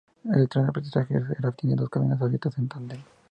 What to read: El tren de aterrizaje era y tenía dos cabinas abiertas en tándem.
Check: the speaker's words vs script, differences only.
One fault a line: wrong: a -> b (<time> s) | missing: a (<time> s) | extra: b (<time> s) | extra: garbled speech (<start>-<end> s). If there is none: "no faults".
no faults